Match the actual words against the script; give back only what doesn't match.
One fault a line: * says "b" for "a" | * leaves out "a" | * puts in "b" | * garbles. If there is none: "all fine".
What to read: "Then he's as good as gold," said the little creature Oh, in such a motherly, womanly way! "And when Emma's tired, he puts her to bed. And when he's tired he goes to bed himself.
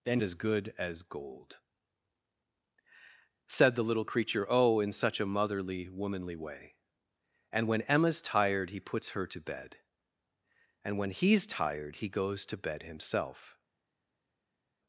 * leaves out "he's"